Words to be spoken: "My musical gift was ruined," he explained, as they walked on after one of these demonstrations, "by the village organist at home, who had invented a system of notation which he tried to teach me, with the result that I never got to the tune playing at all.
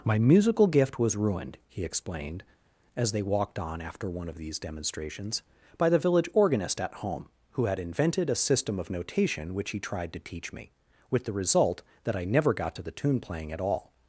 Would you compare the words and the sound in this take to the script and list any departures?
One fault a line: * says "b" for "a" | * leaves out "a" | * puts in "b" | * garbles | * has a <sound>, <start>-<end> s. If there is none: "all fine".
all fine